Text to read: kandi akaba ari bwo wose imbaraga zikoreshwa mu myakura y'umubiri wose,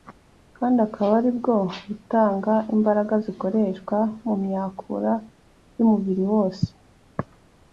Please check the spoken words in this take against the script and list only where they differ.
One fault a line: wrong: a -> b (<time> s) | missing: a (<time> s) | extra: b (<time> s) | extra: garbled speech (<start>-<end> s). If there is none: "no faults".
wrong: wose -> butanga (1.9 s)